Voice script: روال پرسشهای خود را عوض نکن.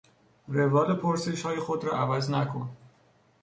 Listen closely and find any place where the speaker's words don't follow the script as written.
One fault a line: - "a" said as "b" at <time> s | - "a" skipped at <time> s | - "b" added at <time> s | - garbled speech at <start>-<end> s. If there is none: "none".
none